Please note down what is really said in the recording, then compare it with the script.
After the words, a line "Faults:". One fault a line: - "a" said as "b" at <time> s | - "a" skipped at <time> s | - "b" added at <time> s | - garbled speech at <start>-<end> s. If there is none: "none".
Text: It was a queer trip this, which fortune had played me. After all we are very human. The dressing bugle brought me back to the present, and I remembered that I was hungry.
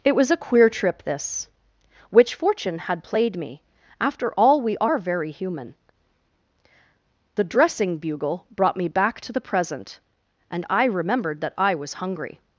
It was a queer trip this, which fortune had played me. After all we are very human. The dressing bugle brought me back to the present, and I remembered that I was hungry.
Faults:
none